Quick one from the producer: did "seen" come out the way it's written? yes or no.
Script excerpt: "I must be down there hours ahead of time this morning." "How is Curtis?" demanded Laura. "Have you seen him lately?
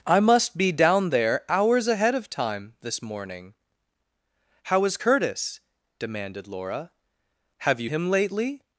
no